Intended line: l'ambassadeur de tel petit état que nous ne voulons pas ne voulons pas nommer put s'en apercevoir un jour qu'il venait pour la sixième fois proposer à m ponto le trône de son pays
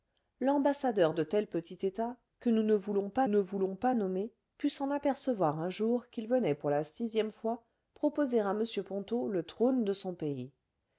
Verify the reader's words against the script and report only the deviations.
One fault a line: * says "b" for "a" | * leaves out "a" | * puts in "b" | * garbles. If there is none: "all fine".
all fine